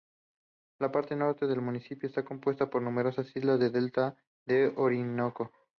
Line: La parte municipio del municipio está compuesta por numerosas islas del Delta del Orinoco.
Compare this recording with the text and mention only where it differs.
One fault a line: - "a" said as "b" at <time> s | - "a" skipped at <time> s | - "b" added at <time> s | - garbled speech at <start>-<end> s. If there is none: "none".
- "municipio" said as "norte" at 1.1 s